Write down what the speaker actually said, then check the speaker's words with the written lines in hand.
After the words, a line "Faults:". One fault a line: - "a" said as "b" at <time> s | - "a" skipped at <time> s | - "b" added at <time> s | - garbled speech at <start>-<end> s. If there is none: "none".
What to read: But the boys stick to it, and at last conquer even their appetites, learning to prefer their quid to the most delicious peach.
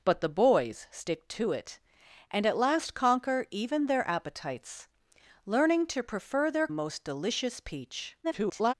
But the boys stick to it, and at last conquer even their appetites, learning to prefer their most delicious peach. [garbled]
Faults:
- "quid to the" skipped at 6.7 s
- garbled speech at 8.2-8.7 s